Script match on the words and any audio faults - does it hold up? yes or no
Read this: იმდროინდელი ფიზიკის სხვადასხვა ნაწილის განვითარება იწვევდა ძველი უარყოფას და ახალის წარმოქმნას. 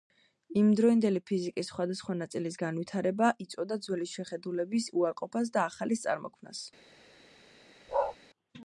no